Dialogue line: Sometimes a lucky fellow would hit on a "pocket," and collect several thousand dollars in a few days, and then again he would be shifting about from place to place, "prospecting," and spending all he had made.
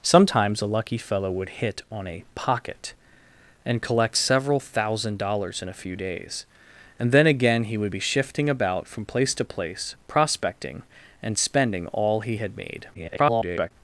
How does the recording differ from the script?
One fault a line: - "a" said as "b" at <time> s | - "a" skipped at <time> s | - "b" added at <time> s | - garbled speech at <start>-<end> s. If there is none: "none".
- garbled speech at 12.9-13.7 s